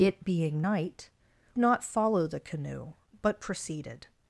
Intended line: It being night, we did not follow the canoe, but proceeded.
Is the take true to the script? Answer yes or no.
no